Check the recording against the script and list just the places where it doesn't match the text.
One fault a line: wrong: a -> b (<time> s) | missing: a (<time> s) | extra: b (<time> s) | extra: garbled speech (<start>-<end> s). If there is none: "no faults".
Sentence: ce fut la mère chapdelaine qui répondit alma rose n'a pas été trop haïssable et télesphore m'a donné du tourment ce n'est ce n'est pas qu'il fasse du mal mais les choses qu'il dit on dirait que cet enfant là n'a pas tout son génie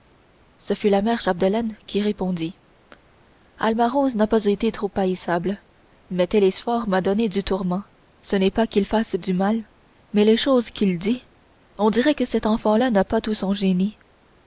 wrong: et -> mais (6.1 s)
missing: ce n'est (8.5 s)